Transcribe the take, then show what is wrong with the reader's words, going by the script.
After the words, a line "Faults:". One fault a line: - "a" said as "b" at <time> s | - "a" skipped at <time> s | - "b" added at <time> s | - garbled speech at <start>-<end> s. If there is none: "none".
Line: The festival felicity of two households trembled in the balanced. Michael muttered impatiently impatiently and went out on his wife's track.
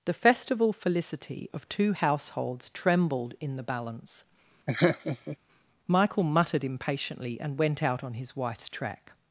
The festival felicity of two households trembled in the balance. Michael muttered impatiently and went out on his wife's track.
Faults:
- "balanced" said as "balance" at 3.6 s
- "impatiently" skipped at 7.4 s